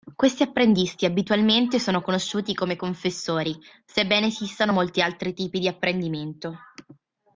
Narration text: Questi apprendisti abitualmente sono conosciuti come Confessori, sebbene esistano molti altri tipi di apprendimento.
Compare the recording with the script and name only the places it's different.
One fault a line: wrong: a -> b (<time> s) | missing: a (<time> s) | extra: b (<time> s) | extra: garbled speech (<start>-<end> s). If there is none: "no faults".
no faults